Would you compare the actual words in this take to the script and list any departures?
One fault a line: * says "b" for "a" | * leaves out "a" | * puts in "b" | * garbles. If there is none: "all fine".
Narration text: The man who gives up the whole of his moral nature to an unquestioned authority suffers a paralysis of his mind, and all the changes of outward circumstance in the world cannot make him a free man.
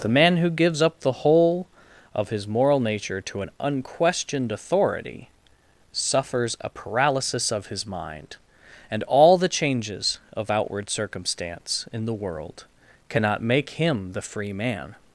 * says "the" for "a"